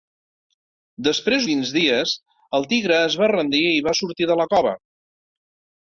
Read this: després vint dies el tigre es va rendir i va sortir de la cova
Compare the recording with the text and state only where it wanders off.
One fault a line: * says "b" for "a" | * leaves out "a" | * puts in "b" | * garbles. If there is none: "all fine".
all fine